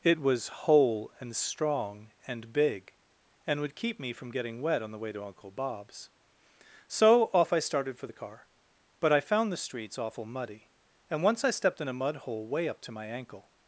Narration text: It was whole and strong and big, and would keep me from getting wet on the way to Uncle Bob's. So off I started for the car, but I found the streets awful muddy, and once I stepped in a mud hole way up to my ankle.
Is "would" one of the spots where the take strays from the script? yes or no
no